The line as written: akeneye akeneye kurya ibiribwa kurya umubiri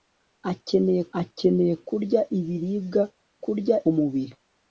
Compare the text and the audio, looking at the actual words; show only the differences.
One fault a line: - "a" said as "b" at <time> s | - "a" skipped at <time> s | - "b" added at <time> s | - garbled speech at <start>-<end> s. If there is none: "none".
none